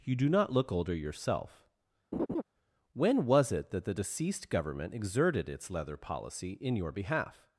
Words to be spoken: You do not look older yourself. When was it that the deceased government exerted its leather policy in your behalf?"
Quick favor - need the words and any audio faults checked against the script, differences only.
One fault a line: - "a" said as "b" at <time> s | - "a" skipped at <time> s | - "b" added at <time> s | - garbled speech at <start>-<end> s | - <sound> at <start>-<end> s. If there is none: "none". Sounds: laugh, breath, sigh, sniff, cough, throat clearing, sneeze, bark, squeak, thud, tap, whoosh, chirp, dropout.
- laugh at 2.1-2.4 s